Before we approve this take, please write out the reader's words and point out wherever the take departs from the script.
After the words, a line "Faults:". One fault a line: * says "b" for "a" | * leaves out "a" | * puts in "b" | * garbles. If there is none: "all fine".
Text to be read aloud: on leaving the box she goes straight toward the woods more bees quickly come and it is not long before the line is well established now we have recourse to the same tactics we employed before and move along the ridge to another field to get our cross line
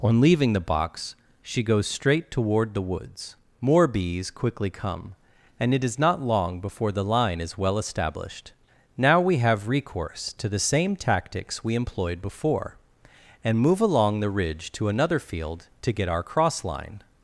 on leaving the box she goes straight toward the woods more bees quickly come and it is not long before the line is well established now we have recourse to the same tactics we employed before and move along the ridge to another field to get our cross line
Faults:
all fine